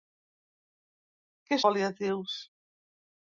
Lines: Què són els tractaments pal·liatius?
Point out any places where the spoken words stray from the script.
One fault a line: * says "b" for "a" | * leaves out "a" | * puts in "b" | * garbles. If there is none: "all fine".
* leaves out "són els tractaments"